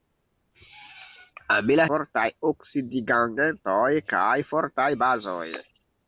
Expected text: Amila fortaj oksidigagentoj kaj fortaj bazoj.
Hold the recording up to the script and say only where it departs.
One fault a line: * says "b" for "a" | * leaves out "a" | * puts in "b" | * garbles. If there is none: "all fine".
all fine